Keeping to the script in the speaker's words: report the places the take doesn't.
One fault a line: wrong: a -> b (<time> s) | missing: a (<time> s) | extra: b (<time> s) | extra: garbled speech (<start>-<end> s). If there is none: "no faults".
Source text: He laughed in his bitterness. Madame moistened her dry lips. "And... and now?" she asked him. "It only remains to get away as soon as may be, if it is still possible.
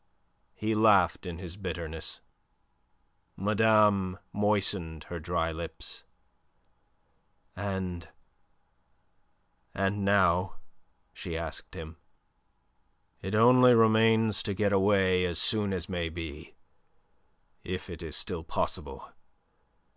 no faults